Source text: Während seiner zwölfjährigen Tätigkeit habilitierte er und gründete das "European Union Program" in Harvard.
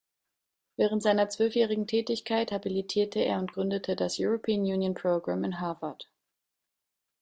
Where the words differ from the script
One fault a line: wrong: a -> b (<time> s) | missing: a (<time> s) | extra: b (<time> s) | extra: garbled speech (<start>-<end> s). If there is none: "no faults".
no faults